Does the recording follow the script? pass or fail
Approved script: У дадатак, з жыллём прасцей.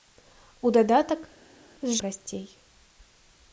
fail